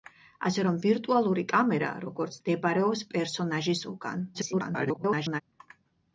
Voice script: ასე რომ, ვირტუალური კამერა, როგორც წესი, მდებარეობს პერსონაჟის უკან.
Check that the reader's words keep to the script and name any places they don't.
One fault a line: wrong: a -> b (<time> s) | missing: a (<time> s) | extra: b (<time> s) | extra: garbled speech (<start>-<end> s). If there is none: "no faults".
missing: წესი (2.4 s)
extra: garbled speech (4.3-5.4 s)